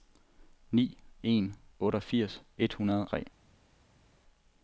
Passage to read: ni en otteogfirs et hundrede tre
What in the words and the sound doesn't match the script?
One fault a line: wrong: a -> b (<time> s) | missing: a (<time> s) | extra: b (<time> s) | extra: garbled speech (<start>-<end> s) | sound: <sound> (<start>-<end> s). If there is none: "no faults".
no faults